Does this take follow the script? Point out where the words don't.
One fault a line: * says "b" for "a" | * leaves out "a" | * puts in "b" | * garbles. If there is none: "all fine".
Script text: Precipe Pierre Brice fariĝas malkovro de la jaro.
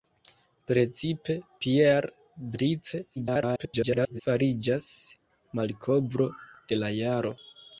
* garbles